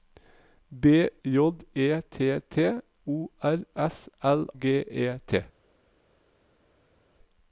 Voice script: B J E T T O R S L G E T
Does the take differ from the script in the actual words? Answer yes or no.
no